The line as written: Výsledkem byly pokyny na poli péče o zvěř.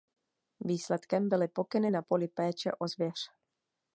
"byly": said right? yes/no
yes